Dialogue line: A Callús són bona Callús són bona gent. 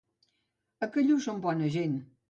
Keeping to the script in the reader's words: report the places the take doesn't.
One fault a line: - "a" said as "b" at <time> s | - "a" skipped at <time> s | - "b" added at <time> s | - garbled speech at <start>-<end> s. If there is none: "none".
- "Callús són bona" skipped at 1.7 s